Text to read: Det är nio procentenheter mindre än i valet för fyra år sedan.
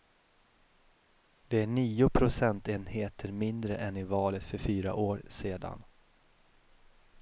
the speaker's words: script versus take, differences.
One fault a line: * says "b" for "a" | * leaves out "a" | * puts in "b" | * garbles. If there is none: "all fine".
all fine